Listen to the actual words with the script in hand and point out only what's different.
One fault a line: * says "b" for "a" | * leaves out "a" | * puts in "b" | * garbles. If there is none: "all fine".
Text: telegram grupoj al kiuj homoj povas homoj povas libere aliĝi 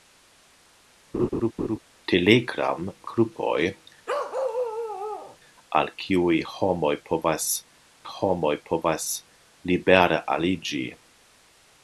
all fine